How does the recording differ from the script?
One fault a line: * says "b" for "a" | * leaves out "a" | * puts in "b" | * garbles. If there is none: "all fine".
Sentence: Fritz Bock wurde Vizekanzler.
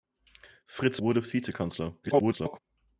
* leaves out "Bock"
* garbles